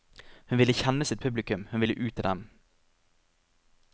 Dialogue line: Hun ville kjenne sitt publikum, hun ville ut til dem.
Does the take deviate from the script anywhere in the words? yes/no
no